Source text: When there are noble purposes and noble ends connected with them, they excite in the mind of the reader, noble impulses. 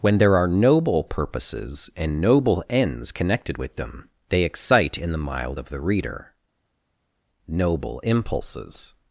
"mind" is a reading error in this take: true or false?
true